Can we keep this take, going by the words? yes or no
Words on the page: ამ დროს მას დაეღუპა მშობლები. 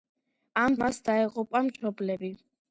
no